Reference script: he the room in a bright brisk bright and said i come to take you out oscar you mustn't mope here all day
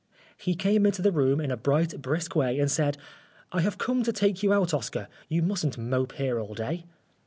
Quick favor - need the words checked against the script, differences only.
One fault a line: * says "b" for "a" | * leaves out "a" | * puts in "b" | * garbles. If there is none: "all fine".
* puts in "came into"
* says "way" for "bright"
* puts in "have"